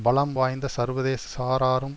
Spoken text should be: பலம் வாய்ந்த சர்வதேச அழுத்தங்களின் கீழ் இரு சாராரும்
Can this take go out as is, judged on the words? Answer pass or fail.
fail